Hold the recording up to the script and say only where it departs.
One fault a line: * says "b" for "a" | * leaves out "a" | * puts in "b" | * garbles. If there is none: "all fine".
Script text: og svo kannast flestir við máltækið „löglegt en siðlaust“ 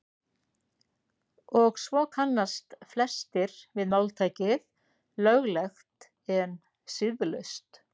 all fine